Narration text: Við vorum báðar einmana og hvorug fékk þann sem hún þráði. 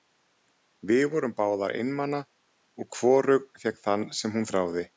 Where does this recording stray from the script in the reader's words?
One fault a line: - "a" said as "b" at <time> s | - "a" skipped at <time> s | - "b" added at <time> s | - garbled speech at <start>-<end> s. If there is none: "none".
none